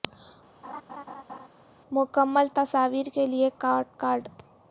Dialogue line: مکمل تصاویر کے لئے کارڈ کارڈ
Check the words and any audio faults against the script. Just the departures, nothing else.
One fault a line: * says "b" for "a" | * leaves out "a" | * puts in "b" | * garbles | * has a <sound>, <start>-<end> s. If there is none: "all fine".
* has a laugh, 0.6-1.5 s